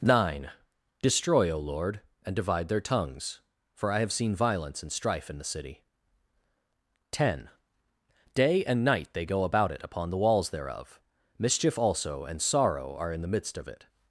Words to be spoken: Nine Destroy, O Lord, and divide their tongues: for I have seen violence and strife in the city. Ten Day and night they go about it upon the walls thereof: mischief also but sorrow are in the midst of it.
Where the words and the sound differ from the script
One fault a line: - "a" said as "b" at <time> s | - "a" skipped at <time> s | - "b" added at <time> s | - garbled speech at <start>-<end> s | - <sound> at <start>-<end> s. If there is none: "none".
- "but" said as "and" at 12.2 s